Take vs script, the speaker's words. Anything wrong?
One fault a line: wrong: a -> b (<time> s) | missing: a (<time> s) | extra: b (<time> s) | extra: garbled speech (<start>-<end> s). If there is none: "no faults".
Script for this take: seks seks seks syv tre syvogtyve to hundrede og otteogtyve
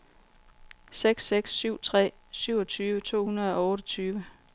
missing: seks (1.5 s)